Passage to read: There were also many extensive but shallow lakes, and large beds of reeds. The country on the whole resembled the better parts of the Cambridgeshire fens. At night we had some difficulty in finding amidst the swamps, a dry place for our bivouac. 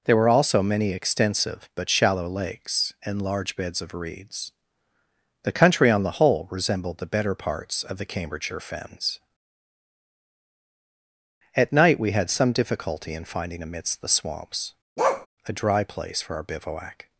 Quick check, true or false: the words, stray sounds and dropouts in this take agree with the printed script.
false